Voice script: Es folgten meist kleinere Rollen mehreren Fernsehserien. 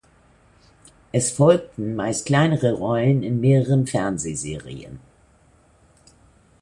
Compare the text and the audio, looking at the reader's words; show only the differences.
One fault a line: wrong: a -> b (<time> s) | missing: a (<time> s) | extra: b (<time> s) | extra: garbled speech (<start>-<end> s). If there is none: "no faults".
extra: in (3.2 s)